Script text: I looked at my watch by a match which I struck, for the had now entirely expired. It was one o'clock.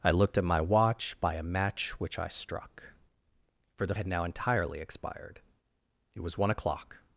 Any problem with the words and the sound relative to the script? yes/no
no